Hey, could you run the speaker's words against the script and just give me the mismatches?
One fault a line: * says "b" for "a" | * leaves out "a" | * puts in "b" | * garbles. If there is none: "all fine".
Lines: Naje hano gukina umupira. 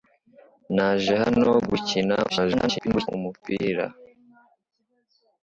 * garbles